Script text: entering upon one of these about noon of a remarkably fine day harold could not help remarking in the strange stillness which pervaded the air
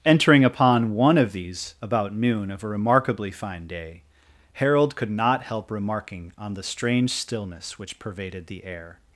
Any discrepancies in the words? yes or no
yes